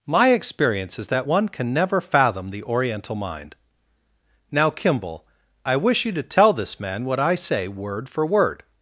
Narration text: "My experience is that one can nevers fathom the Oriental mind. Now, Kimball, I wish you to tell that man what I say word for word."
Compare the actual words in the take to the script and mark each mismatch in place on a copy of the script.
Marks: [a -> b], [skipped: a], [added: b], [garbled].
"My experience is that one can [nevers -> never] fathom the Oriental mind. Now, Kimball, I wish you to tell [that -> this] man what I say word for word."